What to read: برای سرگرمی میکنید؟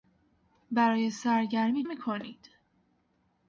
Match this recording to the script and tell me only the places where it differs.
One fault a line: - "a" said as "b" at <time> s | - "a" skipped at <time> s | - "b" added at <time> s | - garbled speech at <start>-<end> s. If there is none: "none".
none